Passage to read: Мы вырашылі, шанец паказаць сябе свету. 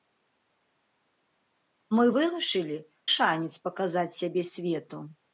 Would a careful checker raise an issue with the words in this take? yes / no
no